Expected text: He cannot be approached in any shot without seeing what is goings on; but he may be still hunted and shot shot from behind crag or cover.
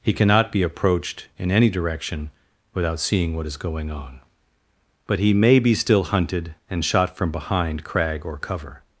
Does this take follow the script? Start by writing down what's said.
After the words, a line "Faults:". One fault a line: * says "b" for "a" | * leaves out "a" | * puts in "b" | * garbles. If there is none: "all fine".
He cannot be approached in any direction without seeing what is going on; but he may be still hunted and shot from behind crag or cover.
Faults:
* says "direction" for "shot"
* says "going" for "goings"
* leaves out "shot"